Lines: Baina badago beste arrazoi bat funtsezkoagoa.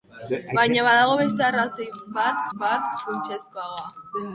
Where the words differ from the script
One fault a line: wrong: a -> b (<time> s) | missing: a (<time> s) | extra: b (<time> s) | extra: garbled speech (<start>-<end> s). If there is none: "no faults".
extra: bat (2.6 s)